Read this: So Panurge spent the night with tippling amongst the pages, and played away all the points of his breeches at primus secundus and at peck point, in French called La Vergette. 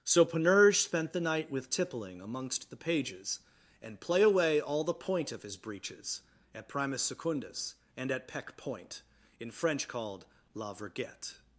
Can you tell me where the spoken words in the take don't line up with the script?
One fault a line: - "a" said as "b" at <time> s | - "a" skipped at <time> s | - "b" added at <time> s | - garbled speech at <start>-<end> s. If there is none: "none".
- "played" said as "play" at 4.0 s
- "points" said as "point" at 4.9 s